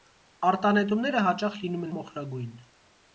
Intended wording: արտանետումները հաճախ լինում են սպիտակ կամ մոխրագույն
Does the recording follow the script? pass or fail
fail